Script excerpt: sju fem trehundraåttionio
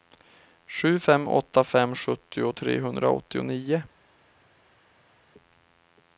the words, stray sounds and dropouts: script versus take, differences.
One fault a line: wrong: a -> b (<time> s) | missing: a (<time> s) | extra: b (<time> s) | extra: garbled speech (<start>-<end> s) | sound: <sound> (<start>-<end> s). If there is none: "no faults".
extra: åtta fem sjuttio (1.3 s)